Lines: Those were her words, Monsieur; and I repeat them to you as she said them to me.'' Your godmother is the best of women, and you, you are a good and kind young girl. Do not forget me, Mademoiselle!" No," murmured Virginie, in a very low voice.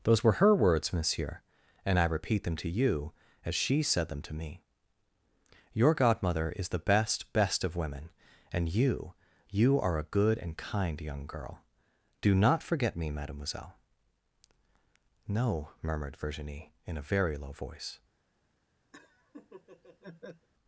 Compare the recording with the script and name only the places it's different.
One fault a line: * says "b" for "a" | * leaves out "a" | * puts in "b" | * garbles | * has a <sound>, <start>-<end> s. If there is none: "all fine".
* puts in "best"
* has a laugh, 18.9-20.5 s